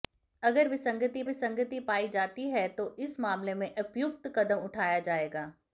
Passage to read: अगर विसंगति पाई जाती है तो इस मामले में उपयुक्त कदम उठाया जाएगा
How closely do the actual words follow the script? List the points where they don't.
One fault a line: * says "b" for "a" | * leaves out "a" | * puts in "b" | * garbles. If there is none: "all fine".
* puts in "विसंगति"